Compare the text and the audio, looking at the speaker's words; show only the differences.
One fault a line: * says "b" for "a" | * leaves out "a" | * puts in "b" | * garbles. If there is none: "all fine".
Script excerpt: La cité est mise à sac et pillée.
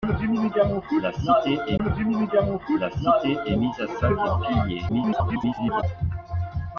* puts in "la cité est"
* garbles